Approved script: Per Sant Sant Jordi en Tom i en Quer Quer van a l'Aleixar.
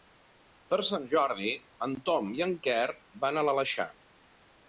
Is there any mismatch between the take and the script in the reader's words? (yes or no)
yes